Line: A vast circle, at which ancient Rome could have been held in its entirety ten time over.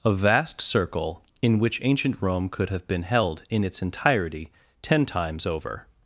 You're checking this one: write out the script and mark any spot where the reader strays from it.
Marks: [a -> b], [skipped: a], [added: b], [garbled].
A vast circle, [at -> in] which ancient Rome could have been held in its entirety ten [time -> times] over.